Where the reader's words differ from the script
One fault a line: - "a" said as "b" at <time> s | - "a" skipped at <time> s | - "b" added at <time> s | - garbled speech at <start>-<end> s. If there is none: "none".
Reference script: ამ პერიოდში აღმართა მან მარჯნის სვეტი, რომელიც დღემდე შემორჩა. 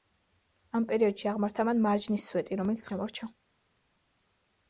- "დღემდე" skipped at 2.9 s